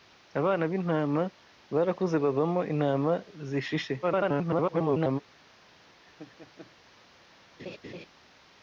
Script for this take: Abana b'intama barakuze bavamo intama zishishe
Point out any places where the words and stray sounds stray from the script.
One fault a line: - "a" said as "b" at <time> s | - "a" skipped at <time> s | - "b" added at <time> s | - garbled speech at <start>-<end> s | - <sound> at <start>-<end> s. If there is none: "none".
- garbled speech at 4.0-5.2 s
- laugh at 6.0-6.8 s
- laugh at 7.6-8.1 s